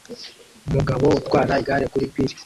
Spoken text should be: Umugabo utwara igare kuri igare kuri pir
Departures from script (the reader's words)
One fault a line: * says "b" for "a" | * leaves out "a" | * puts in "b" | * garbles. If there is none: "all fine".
* leaves out "igare kuri"